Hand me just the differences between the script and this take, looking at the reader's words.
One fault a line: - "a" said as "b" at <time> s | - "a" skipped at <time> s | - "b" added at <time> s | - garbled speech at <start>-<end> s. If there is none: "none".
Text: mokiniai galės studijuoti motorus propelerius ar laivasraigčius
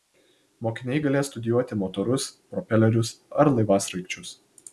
none